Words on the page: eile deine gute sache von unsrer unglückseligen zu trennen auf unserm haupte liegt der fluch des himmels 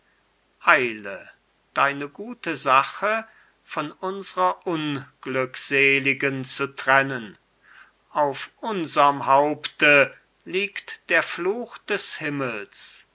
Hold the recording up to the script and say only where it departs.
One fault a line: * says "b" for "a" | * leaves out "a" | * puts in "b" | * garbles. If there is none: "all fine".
all fine